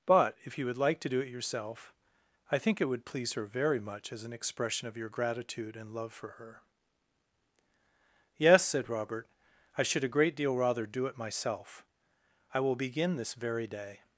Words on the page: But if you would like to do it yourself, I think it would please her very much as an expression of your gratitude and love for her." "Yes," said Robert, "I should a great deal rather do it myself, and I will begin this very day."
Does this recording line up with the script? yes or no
no